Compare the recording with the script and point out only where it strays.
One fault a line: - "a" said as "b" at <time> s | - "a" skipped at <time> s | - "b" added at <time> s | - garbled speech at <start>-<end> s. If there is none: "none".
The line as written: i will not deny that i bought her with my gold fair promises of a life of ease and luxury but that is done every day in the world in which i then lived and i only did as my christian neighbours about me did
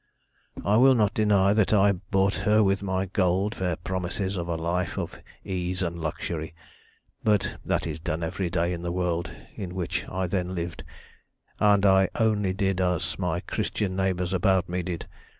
none